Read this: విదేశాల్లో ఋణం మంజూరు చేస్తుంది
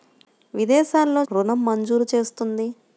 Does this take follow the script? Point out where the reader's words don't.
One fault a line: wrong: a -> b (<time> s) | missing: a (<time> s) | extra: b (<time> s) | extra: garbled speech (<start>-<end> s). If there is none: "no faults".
no faults